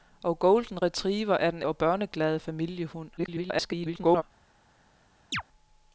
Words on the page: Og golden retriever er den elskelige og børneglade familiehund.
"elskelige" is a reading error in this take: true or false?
true